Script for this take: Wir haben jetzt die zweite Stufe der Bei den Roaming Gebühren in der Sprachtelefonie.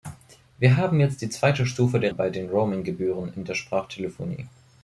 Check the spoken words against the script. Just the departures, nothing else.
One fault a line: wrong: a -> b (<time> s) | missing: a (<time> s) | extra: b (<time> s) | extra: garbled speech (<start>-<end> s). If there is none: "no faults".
no faults